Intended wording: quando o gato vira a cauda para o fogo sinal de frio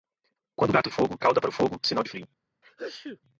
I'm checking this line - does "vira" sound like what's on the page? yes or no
no